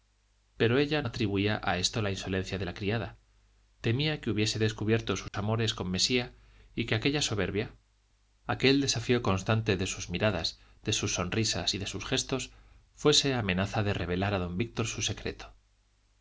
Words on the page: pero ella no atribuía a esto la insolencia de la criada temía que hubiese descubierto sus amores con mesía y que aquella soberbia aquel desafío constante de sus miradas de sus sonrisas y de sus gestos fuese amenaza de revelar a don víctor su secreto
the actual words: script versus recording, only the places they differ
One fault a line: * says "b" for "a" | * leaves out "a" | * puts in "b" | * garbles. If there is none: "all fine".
* leaves out "no"